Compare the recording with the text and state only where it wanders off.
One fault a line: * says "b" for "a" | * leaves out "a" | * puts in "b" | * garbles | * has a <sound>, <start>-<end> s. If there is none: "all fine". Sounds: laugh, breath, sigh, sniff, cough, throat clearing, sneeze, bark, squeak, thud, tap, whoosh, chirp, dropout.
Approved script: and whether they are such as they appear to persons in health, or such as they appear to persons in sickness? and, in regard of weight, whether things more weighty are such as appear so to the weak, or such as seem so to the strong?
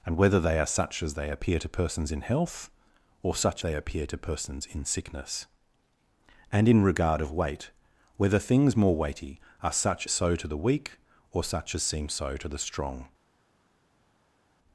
* leaves out "as"
* leaves out "as appear"